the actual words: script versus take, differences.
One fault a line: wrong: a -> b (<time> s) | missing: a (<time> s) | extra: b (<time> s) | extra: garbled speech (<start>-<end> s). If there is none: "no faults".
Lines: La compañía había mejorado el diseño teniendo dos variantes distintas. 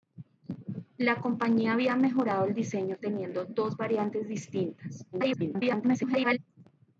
extra: garbled speech (5.1-6.4 s)